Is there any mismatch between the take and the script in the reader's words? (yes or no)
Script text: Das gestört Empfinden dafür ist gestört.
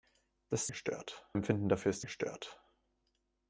no